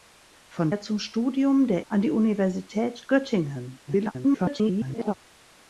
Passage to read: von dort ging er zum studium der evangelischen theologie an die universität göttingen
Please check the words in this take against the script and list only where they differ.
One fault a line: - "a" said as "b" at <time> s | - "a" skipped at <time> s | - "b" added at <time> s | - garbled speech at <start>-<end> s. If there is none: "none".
- "dort ging" skipped at 0.7 s
- "evangelischen theologie" skipped at 1.8 s
- garbled speech at 3.9-5.1 s